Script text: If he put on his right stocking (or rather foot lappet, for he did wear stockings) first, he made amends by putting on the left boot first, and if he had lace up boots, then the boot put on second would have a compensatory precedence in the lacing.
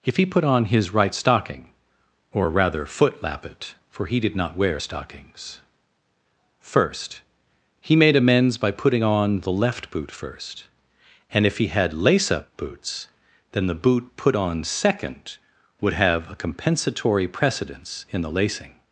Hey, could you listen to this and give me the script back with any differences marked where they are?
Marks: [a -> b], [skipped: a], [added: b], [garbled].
If he put on his right stocking (or rather foot lappet, for he did [added: not] wear stockings) first, he made amends by putting on the left boot first, and if he had lace up boots, then the boot put on second would have a compensatory precedence in the lacing.